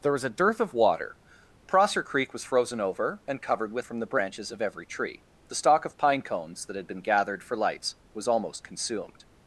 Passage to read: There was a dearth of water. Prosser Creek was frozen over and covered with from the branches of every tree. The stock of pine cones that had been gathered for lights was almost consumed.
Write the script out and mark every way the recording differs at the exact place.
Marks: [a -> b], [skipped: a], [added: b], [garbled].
There was a dearth of water. Prosser Creek was frozen over and covered with from the branches of every tree. The stock of pine cones that had been gathered for lights was almost consumed.